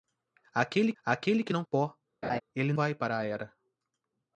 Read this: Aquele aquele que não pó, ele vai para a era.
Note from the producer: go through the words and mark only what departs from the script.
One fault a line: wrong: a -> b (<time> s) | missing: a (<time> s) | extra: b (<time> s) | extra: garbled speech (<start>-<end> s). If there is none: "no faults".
no faults